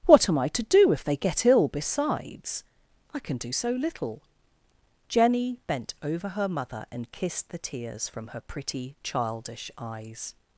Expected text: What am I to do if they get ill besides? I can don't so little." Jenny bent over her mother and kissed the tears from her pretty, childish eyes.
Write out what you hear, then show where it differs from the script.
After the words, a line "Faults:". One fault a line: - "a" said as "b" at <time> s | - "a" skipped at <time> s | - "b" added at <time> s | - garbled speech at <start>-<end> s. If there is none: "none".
What am I to do if they get ill besides? I can do so little." Jenny bent over her mother and kissed the tears from her pretty, childish eyes.
Faults:
- "don't" said as "do" at 3.4 s